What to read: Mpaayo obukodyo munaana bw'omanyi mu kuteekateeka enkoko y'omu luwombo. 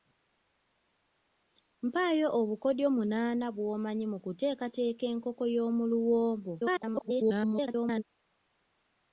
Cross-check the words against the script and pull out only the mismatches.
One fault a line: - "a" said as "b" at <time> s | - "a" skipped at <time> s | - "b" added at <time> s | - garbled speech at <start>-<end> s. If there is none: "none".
- garbled speech at 6.6-8.0 s